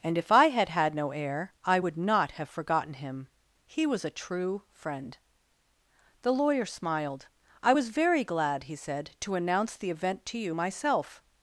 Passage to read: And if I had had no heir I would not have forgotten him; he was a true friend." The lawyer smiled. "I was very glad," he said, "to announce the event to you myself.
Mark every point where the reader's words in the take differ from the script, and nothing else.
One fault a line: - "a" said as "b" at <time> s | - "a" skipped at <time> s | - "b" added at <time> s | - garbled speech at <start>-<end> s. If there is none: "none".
none